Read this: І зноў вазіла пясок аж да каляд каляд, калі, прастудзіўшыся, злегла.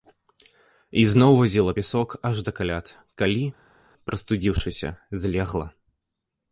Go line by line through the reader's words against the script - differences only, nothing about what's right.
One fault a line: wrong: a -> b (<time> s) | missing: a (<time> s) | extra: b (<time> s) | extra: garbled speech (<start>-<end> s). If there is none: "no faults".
missing: каляд (2.9 s)